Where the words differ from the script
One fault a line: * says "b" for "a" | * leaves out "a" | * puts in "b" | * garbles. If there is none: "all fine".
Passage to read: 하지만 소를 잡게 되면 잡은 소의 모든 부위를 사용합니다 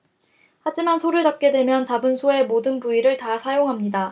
* puts in "다"